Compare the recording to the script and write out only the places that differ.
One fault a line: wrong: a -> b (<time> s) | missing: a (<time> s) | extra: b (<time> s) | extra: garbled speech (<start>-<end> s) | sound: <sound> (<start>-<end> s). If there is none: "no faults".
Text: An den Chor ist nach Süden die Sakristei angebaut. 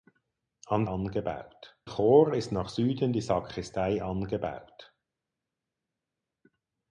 wrong: den -> angebaut (0.9 s)